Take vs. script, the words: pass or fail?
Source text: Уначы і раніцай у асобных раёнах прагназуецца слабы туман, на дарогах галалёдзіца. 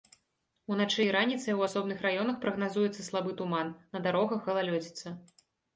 pass